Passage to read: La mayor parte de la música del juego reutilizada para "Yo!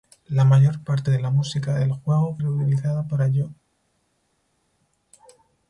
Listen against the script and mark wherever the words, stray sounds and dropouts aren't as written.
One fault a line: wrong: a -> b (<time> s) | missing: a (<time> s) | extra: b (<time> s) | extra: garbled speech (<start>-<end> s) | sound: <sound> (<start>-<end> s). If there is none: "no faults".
no faults